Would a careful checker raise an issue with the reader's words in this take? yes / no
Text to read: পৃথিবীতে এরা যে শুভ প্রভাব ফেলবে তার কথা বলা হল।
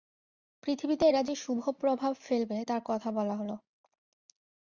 no